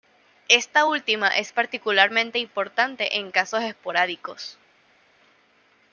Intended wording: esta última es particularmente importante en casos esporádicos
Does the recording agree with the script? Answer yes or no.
yes